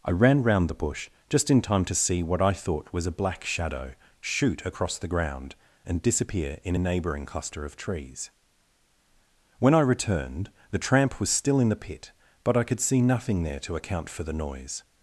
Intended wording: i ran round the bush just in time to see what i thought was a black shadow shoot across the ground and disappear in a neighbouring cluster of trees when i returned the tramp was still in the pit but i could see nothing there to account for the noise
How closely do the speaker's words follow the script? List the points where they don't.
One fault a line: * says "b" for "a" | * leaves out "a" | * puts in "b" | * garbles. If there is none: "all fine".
all fine